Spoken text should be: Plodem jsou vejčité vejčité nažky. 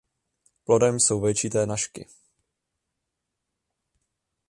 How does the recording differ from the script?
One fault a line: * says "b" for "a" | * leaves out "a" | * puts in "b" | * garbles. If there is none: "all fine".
* leaves out "vejčité"